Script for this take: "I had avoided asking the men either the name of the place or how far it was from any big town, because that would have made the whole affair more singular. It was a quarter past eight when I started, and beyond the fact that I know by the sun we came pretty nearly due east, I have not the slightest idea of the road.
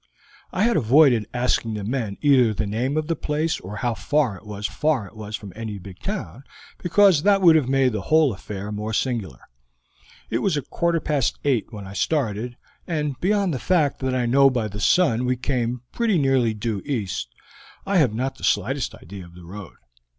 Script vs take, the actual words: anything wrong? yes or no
yes